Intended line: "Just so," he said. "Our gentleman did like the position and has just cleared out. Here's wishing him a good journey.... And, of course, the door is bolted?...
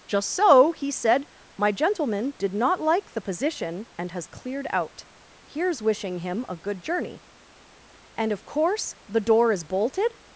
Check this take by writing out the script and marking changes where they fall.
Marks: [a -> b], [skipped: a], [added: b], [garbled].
"Just so," he said. ["Our -> My] gentleman did [added: not] like the position and has [skipped: just] cleared out. Here's wishing him a good journey.... And, of course, the door is bolted?...